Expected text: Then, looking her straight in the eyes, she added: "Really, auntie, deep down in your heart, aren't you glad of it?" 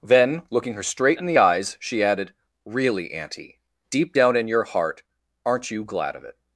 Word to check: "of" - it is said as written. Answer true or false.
true